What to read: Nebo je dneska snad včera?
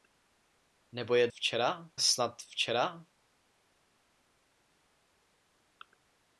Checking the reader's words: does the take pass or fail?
fail